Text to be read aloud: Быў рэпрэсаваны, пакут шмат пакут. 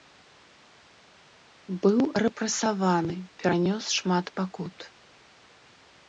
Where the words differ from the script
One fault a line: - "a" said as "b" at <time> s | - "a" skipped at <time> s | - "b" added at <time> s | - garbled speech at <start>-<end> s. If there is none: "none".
- "пакут" said as "перанёс" at 3.4 s